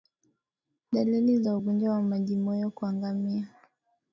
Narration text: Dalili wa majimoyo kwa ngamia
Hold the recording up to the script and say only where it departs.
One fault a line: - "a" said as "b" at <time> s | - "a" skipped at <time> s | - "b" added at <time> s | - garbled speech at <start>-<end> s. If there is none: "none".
- "za ugonjwa" added at 1.4 s